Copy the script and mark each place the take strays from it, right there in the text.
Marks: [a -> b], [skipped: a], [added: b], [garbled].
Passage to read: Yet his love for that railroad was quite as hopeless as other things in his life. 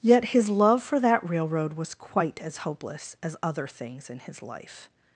Yet his love for that railroad was quite as hopeless as other things in his life.